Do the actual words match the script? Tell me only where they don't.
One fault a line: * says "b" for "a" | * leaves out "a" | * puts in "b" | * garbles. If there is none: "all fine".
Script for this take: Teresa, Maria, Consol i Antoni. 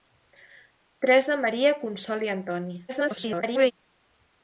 * garbles